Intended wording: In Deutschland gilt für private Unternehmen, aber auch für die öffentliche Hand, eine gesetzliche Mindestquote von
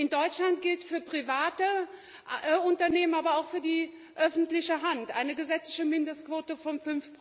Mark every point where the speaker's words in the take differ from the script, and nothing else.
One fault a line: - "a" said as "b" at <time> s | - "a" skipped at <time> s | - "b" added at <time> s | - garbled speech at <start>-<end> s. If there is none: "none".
none